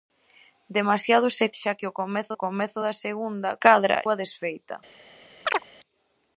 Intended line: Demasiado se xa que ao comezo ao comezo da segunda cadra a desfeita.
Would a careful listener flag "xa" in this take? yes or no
no